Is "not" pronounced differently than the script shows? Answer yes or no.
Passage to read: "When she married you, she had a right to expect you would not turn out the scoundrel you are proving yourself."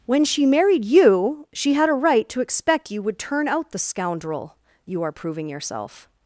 yes